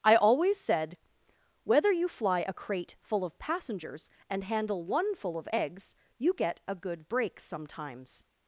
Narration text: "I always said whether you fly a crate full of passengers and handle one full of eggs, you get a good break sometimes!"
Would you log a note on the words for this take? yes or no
no